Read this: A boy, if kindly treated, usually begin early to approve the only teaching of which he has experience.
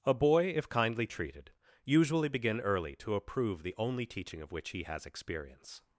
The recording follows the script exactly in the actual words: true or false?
true